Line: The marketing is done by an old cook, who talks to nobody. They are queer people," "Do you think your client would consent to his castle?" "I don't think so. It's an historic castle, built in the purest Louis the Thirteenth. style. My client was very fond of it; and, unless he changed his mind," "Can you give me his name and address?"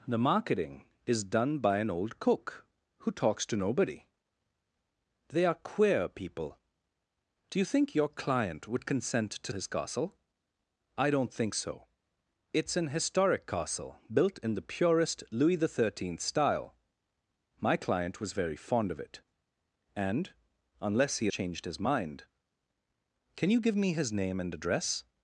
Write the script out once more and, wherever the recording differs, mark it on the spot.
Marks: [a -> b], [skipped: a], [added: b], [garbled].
The marketing is done by an old cook, who talks to nobody. They are queer people," "Do you think your client would consent to his castle?" "I don't think so. It's an historic castle, built in the purest Louis the Thirteenth. style. My client was very fond of it; and, unless he changed his mind," "Can you give me his name and address?"